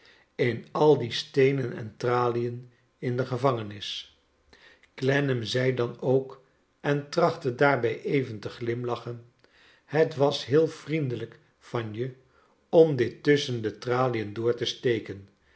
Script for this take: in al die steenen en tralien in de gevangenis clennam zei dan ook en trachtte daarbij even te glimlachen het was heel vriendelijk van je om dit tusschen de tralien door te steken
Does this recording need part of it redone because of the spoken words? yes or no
no